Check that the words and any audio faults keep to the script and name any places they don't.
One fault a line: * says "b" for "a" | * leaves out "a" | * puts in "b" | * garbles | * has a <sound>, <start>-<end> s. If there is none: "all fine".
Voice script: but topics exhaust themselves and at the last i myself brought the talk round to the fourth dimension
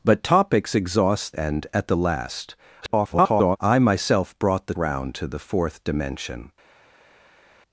* leaves out "themselves"
* garbles
* leaves out "talk"